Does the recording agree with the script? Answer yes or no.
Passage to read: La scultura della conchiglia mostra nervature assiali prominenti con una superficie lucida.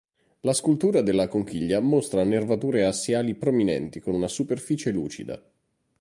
yes